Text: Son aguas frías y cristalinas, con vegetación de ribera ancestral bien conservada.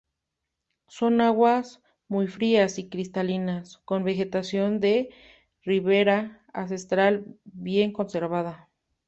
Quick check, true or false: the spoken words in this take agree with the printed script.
false